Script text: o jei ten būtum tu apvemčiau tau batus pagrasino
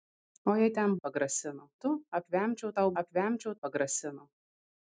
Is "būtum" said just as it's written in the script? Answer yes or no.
no